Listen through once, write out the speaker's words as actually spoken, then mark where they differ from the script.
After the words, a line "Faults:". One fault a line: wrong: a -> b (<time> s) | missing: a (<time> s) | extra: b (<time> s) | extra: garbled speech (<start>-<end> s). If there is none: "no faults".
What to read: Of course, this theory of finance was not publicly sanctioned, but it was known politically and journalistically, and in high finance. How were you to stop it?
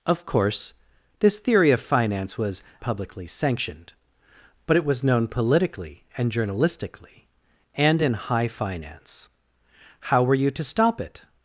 Of course, this theory of finance was publicly sanctioned, but it was known politically and journalistically, and in high finance. How were you to stop it?
Faults:
missing: not (2.6 s)